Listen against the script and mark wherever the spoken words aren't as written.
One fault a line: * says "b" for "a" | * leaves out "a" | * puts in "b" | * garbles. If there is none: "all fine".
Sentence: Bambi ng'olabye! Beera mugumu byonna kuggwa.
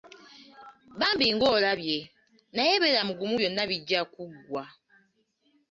* puts in "Naye"
* puts in "bijja"